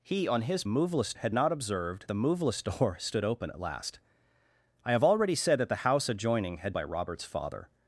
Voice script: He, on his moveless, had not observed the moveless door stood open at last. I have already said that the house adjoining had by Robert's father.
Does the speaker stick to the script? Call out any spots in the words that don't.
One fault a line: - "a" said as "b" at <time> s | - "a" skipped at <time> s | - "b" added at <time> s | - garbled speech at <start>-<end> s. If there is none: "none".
none